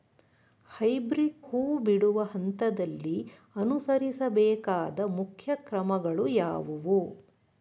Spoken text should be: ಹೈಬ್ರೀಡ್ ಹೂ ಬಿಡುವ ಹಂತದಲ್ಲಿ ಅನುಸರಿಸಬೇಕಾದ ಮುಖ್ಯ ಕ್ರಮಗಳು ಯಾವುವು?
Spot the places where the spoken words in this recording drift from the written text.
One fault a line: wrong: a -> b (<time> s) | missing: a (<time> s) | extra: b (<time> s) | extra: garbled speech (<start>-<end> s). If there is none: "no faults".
no faults